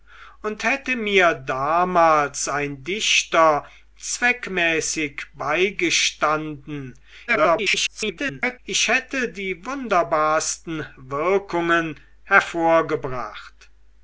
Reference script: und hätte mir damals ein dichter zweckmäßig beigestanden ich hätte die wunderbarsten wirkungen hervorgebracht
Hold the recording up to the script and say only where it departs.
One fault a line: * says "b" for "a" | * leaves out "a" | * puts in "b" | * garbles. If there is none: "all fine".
* garbles